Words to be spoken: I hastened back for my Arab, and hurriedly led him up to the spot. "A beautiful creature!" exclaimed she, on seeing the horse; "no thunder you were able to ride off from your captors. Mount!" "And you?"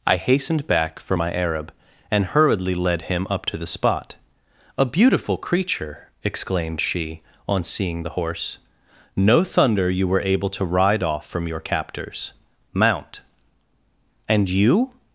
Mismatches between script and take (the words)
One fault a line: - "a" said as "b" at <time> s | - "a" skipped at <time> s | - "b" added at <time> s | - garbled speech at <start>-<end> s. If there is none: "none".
none